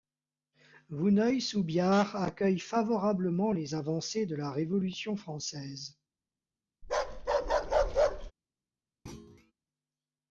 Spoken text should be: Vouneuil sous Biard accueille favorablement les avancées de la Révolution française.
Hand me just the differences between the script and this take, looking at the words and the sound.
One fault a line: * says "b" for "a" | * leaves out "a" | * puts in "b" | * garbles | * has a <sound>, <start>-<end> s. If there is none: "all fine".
* has a bark, 6.8-8.3 s
* has a thud, 9.1-9.5 s